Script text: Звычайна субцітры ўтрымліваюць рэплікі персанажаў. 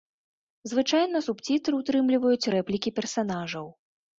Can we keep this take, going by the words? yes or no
yes